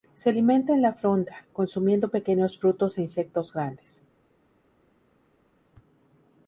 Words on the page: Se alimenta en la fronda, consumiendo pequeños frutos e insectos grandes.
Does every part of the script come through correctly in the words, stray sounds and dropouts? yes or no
yes